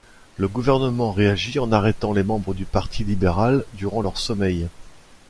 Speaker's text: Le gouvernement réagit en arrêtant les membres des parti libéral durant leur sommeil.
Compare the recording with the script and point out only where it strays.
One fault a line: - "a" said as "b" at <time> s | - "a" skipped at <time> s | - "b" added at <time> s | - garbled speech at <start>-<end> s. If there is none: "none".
- "des" said as "du" at 2.5 s